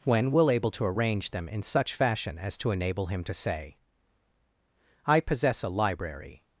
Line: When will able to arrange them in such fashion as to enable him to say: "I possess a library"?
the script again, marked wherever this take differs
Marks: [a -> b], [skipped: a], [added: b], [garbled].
When will able to arrange them in such fashion as to enable him to say: "I possess a library"?